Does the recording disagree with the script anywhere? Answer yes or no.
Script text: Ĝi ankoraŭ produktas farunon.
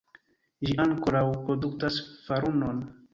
no